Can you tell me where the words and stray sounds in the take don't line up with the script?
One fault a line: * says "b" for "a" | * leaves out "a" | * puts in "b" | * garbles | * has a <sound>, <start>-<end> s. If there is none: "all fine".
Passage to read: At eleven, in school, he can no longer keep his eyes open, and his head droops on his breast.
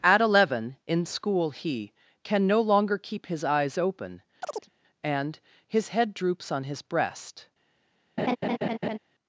* has a chirp, 4.4-4.7 s
* has a laugh, 8.2-9.0 s